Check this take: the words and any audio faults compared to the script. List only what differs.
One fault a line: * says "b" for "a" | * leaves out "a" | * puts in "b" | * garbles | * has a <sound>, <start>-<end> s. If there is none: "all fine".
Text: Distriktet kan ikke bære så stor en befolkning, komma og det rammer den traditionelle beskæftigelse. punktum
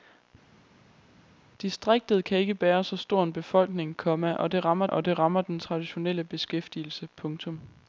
* puts in "og det rammer"